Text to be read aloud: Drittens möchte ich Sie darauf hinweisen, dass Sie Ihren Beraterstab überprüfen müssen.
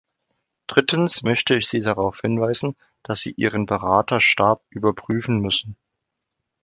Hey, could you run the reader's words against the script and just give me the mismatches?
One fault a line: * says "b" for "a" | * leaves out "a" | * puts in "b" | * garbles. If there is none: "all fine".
all fine